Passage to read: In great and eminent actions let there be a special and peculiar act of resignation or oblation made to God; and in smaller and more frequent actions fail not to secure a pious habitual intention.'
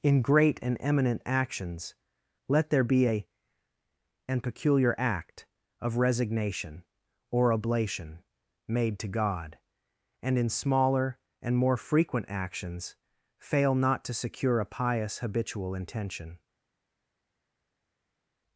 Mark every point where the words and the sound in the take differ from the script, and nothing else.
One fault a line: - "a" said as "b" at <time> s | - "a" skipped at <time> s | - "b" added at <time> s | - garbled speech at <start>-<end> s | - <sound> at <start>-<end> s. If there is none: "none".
- "special" skipped at 3.3 s